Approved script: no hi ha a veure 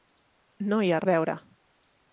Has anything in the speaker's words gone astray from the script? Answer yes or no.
no